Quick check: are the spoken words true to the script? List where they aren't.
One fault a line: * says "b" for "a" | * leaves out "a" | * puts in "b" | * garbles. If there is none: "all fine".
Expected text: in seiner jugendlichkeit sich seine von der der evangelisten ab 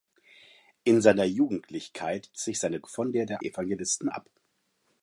all fine